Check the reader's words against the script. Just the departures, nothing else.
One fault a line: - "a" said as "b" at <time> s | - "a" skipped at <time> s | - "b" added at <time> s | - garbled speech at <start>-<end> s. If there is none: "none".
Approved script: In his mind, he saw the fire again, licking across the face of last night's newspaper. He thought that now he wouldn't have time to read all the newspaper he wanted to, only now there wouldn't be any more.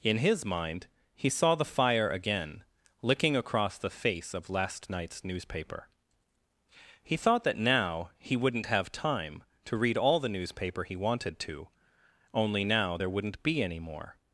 none